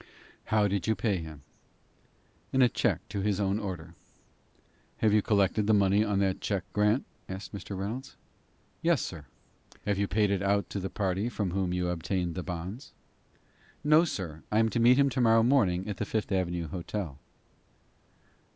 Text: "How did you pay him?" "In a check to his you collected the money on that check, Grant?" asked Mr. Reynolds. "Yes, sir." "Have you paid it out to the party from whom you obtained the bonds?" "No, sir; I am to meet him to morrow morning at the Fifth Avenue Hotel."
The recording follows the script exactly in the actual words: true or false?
false